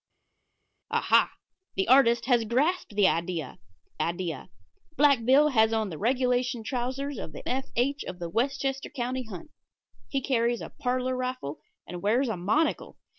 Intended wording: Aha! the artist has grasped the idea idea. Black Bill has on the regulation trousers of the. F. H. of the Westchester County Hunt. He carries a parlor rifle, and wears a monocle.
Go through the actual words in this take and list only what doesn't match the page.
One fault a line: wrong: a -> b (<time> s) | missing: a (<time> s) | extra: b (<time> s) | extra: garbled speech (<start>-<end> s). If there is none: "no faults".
no faults